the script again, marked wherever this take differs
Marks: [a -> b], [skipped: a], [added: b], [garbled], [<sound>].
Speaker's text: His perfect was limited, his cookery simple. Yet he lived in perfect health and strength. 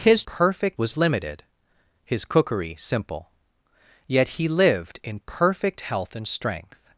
His perfect was limited, his cookery simple. Yet he lived in perfect health and strength.